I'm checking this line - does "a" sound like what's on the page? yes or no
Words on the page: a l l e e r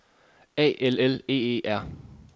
yes